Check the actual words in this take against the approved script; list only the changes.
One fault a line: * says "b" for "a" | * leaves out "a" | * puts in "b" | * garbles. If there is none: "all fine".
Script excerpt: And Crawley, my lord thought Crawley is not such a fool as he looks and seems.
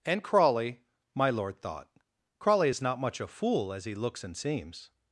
* says "much" for "such"